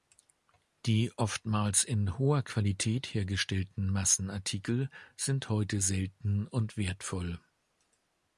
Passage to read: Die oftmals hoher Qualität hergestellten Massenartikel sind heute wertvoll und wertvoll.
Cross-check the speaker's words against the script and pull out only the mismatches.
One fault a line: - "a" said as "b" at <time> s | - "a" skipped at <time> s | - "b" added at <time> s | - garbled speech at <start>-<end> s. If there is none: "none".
- "in" added at 1.8 s
- "wertvoll" said as "selten" at 5.8 s